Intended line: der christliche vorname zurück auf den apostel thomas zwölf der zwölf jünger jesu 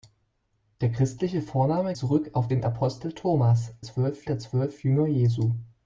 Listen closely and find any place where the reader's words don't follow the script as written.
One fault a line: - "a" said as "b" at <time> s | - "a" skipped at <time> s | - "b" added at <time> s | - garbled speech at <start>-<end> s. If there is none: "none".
none